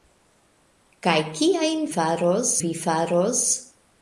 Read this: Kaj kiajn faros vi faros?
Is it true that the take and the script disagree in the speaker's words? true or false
false